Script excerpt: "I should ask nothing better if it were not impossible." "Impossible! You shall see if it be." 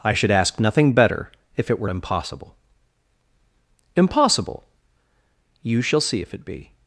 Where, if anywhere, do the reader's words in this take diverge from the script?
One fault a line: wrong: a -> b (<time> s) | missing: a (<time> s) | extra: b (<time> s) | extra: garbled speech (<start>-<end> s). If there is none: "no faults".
missing: not (1.9 s)